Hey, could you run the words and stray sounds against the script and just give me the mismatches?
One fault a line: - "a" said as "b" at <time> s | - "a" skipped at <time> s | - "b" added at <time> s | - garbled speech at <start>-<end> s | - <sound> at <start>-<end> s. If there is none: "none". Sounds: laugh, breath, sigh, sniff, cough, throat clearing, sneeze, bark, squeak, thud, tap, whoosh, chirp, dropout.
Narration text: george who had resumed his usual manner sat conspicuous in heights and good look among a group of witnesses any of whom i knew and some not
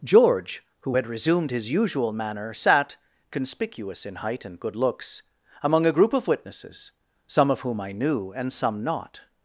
- "heights" said as "height" at 4.2 s
- "look" said as "looks" at 4.7 s
- "any" said as "some" at 7.3 s